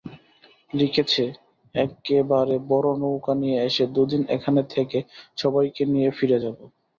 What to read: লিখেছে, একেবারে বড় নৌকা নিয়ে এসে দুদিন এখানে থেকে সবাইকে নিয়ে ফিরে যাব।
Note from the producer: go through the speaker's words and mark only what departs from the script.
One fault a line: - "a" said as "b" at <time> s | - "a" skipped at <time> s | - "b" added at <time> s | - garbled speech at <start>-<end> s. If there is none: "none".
none